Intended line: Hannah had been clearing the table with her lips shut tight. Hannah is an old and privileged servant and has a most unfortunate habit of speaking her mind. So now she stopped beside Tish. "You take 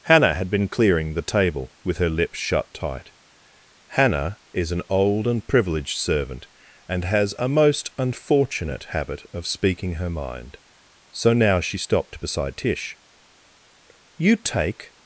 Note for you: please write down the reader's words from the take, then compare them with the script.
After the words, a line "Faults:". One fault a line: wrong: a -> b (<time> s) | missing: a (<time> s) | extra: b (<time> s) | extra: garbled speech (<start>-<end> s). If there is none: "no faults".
Hannah had been clearing the table with her lips shut tight. Hannah is an old and privileged servant and has a most unfortunate habit of speaking her mind. So now she stopped beside Tish. "You take
Faults:
no faults